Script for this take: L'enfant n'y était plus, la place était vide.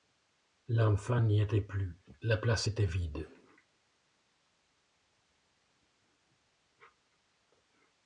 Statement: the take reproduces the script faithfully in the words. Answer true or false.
true